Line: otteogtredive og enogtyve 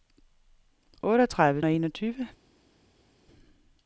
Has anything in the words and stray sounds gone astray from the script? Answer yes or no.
no